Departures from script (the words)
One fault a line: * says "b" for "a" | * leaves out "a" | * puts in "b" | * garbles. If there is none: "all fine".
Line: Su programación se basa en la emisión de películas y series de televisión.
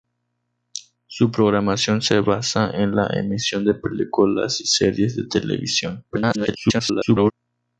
* garbles